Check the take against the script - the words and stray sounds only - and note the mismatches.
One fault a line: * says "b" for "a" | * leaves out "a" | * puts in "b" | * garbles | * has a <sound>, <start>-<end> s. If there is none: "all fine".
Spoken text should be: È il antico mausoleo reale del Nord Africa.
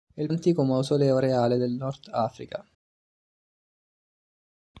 all fine